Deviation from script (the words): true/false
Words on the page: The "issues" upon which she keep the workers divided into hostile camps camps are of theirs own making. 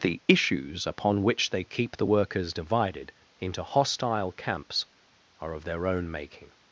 true